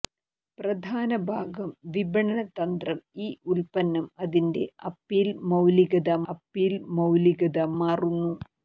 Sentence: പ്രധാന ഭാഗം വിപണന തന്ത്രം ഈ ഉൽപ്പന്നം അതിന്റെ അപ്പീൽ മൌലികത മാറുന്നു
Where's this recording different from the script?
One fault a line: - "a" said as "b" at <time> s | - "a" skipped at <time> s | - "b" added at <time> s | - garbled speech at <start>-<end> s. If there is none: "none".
- "അപ്പീൽ മൌലികത" added at 6.3 s